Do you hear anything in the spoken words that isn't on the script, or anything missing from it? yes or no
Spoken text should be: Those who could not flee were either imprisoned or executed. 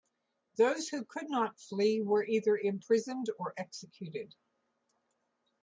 no